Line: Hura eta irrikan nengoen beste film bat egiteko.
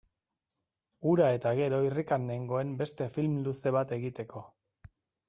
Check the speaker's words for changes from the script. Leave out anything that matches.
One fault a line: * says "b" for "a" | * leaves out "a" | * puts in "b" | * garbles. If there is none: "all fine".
* puts in "gero"
* puts in "luze"